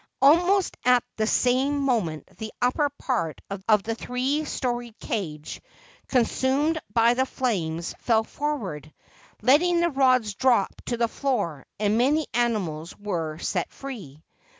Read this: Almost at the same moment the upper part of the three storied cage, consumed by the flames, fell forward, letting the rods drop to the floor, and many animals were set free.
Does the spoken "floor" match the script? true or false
true